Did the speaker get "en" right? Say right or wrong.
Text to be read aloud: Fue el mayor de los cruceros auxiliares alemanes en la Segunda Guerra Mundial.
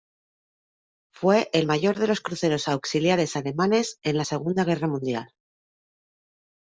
right